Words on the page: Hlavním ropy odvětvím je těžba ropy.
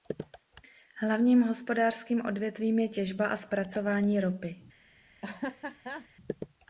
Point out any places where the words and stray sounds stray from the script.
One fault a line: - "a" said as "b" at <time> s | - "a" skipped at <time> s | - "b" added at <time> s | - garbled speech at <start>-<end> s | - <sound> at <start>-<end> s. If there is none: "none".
- "ropy" said as "hospodářským" at 1.4 s
- "a zpracování" added at 3.2 s
- laugh at 5.2-6.1 s